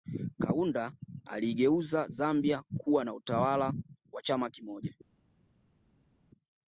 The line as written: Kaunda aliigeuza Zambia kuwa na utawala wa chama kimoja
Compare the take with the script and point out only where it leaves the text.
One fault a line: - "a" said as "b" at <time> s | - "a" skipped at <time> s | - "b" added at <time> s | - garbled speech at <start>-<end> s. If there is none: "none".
none